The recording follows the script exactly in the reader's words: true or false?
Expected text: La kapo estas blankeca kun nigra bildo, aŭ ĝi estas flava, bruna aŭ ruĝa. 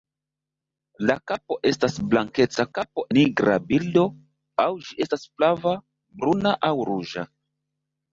false